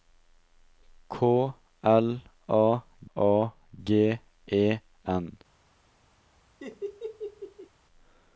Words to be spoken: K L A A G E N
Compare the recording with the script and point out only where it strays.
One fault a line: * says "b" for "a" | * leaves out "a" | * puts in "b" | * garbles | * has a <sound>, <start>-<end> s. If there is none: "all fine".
* has a laugh, 6.6-7.7 s